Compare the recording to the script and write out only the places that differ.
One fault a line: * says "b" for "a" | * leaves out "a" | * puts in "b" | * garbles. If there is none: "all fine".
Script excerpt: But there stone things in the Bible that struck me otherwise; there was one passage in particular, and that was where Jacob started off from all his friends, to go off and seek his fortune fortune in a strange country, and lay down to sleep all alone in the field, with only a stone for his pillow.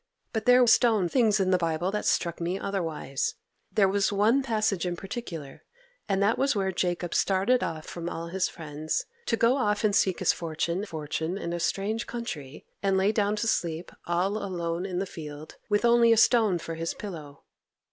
all fine